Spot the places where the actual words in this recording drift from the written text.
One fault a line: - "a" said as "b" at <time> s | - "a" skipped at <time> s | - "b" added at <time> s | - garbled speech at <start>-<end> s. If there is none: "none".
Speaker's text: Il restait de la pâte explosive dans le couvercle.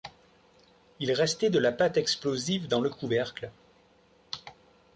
none